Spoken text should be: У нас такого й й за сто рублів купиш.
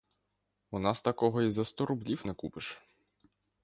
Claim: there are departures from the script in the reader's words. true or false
true